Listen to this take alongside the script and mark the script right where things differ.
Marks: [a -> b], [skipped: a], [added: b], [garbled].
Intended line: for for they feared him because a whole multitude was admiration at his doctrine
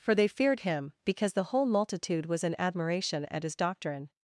for [skipped: for] they feared him because [a -> the] whole multitude was [added: in] admiration at his doctrine